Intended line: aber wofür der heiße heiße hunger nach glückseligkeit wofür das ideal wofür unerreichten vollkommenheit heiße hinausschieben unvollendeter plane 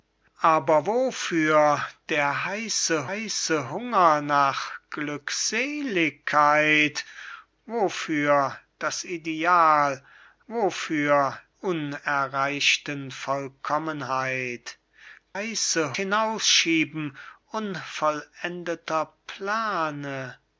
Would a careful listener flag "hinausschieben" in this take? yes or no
no